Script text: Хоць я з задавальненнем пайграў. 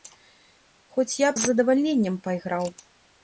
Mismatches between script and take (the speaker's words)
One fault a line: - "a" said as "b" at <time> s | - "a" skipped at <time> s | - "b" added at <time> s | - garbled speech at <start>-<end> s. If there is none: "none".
none